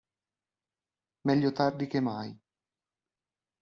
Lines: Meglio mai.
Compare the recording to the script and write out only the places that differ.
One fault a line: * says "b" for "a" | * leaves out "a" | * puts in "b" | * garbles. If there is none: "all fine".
* puts in "tardi che"